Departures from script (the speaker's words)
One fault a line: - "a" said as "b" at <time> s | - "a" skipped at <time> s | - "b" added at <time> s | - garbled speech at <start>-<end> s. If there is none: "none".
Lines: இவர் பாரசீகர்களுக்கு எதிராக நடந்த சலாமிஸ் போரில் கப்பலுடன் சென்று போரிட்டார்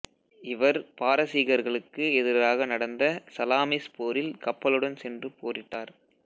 none